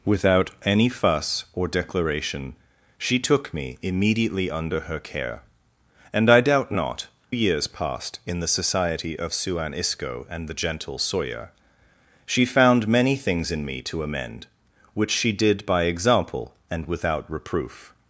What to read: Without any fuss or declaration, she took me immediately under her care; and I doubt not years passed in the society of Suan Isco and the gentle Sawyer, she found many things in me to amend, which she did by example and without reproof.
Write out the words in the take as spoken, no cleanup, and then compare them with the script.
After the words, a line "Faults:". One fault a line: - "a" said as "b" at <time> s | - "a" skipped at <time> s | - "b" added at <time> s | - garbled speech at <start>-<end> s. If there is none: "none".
Without any fuss or declaration, she took me immediately under her care; and I doubt not years passed in the society of Suan Isco and the gentle Sawyer, she found many things in me to amend, which she did by example and without reproof.
Faults:
none